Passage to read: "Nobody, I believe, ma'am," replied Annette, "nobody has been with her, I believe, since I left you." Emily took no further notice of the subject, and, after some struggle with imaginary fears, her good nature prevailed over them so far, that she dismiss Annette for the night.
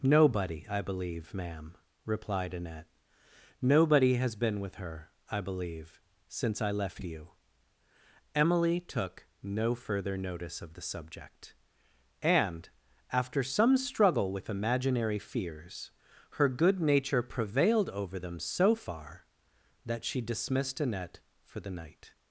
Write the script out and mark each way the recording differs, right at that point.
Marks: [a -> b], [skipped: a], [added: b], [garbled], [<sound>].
"Nobody, I believe, ma'am," replied Annette, "nobody has been with her, I believe, since I left you." Emily took no further notice of the subject, and, after some struggle with imaginary fears, her good nature prevailed over them so far, that she [dismiss -> dismissed] Annette for the night.